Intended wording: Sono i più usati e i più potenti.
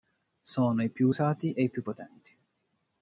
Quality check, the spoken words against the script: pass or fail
pass